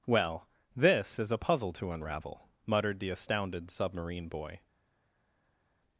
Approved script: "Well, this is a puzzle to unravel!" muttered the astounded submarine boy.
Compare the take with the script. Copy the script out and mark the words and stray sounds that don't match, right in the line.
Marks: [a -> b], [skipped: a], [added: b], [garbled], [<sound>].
"Well, this is a puzzle to unravel!" muttered the astounded submarine boy.